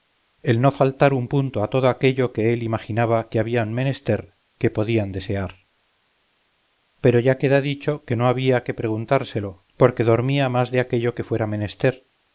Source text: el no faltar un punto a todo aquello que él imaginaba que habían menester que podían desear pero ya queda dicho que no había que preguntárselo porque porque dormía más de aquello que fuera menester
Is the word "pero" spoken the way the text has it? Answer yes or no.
yes